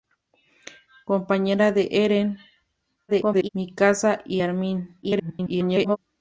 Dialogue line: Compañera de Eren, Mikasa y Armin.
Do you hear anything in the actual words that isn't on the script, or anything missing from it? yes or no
yes